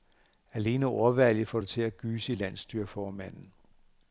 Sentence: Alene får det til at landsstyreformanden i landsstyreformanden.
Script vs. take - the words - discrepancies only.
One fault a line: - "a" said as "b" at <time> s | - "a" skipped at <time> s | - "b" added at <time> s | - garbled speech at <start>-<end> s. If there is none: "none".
- "ordvalget" added at 0.8 s
- "landsstyreformanden" said as "gyse" at 2.0 s